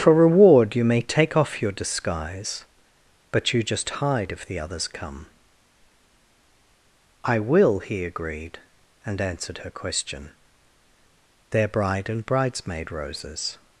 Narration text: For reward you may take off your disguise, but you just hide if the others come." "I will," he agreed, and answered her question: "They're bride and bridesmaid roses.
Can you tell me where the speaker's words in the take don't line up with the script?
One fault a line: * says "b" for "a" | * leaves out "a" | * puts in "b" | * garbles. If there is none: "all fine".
all fine